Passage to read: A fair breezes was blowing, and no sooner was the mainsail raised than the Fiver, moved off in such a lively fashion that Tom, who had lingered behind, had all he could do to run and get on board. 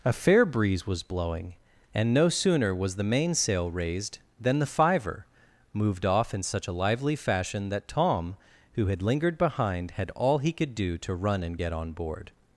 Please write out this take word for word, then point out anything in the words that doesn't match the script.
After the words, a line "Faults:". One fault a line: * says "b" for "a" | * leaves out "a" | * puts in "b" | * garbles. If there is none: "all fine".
A fair breeze was blowing, and no sooner was the mainsail raised than the Fiver, moved off in such a lively fashion that Tom, who had lingered behind, had all he could do to run and get on board.
Faults:
* says "breeze" for "breezes"